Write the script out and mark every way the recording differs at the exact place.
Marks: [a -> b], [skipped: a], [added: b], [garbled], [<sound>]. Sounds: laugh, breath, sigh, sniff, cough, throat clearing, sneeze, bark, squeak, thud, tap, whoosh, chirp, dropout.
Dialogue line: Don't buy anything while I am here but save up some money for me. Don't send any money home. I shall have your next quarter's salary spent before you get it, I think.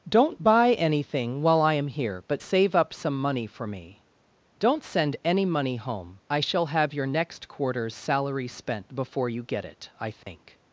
Don't buy anything while I am here but save up some money for me. Don't send any money home. I shall have your next quarter's salary spent before you get it, I think. [dropout]